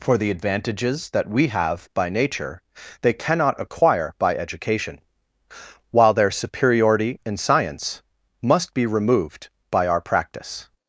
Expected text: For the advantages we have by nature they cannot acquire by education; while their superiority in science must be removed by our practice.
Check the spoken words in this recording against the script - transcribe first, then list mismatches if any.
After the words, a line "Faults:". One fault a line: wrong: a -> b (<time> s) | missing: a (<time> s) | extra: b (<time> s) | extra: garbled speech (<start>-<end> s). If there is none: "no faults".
For the advantages that we have by nature they cannot acquire by education; while their superiority in science must be removed by our practice.
Faults:
extra: that (1.1 s)